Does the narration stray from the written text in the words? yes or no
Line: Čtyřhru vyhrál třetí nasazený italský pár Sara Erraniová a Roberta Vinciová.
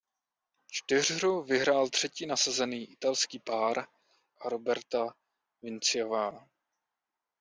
yes